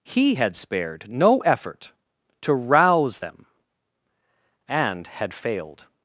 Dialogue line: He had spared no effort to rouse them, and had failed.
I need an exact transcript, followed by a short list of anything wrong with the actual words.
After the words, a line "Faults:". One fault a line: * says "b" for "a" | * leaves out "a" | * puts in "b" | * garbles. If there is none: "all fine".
He had spared no effort to rouse them, and had failed.
Faults:
all fine